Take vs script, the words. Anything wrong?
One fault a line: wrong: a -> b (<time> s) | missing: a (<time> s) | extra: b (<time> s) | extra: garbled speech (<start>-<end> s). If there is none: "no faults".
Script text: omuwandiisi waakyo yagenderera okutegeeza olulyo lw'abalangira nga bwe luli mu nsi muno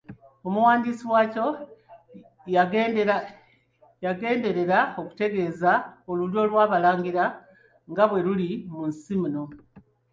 no faults